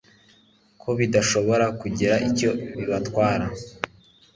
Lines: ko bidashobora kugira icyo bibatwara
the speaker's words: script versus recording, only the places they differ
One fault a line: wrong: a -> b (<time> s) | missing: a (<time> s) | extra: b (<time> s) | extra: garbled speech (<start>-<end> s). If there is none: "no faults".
no faults